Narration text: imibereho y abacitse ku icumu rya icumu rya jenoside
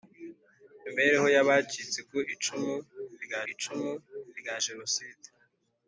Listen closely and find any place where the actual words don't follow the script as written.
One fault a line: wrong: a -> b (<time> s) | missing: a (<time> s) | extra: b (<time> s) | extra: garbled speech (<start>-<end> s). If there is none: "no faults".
no faults